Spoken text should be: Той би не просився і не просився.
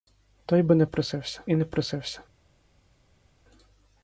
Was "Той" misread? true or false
false